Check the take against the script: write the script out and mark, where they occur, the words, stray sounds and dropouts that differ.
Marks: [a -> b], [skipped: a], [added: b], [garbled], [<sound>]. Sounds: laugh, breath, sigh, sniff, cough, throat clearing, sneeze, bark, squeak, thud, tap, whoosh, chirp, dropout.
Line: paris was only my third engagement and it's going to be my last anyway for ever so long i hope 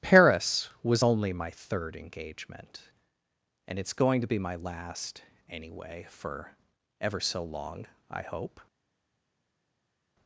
paris was only my third engagement and it's going to be my last anyway for ever so long i hope